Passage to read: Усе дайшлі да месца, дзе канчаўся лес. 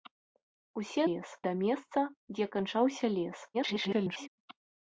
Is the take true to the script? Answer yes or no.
no